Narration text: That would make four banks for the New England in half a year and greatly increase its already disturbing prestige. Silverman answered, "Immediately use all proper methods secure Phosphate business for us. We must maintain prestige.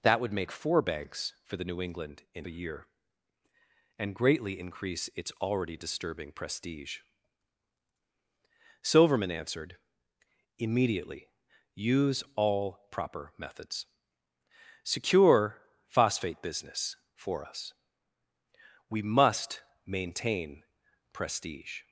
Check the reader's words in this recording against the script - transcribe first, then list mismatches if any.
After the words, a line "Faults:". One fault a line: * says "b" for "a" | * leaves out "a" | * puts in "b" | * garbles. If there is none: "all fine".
That would make four banks for the New England in a year and greatly increase its already disturbing prestige. Silverman answered, "Immediately use all proper methods secure Phosphate business for us. We must maintain prestige.
Faults:
* leaves out "half"